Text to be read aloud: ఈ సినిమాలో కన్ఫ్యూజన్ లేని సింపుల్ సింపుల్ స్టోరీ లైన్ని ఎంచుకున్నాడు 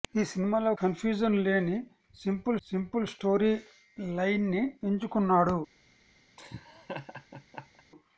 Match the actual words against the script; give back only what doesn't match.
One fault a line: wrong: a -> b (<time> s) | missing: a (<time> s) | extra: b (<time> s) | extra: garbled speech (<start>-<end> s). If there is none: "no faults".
no faults